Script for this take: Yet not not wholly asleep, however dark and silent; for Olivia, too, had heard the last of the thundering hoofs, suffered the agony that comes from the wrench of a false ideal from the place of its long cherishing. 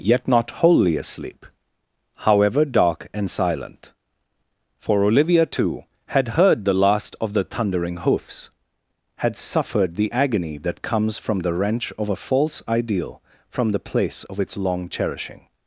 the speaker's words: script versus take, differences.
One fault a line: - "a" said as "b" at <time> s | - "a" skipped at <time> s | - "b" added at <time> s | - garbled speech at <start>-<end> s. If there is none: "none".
- "not" skipped at 0.5 s
- "had" added at 9.2 s